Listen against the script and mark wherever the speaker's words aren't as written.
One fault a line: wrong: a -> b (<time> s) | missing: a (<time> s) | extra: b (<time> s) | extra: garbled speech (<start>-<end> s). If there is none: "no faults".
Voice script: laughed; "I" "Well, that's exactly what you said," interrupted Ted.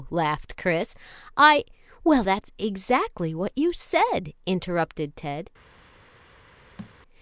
extra: Chris (0.6 s)